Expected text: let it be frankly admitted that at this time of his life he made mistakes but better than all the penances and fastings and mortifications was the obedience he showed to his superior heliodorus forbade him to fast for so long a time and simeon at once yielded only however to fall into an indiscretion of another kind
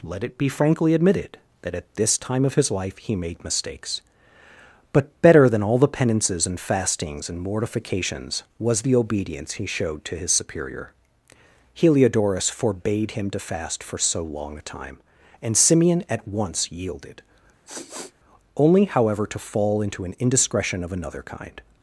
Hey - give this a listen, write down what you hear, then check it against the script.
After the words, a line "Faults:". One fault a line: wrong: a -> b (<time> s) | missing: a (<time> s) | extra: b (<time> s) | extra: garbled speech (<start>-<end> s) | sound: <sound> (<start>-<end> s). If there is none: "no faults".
let it be frankly admitted that at this time of his life he made mistakes but better than all the penances and fastings and mortifications was the obedience he showed to his superior heliodorus forbade him to fast for so long a time and simeon at once yielded only however to fall into an indiscretion of another kind
Faults:
sound: sniff (17.7-18.1 s)